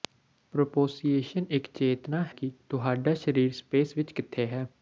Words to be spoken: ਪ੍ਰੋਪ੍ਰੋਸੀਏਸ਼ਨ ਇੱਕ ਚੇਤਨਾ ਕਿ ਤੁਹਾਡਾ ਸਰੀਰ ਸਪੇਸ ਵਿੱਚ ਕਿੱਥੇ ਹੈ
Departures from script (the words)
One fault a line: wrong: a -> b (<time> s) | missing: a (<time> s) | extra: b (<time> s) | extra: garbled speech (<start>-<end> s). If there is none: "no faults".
no faults